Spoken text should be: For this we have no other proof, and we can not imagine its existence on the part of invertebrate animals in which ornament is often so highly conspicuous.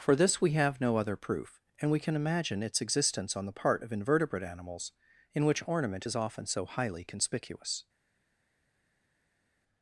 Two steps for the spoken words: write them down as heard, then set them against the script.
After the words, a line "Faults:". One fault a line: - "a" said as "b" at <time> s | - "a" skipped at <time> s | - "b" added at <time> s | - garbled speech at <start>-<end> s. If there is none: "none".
For this we have no other proof, and we can imagine its existence on the part of invertebrate animals in which ornament is often so highly conspicuous.
Faults:
- "not" skipped at 2.1 s